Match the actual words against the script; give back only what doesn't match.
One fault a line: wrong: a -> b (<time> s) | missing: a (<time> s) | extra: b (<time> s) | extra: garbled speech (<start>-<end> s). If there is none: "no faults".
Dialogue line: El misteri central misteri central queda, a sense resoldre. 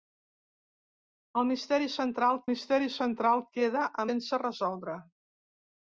no faults